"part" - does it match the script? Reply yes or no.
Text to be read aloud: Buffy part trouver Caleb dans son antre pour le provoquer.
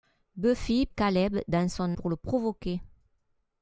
no